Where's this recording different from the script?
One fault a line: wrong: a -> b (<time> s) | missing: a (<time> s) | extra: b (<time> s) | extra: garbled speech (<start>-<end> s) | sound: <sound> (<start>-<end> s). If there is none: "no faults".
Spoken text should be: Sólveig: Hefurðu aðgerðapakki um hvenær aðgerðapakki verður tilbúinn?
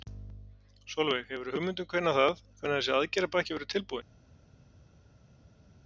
wrong: aðgerðapakki -> hugmynd (1.5 s)
extra: það hvenær þessi (2.2 s)